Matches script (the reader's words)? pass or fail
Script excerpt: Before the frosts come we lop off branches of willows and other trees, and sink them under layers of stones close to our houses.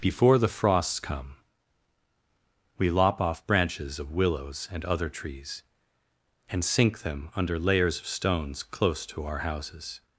pass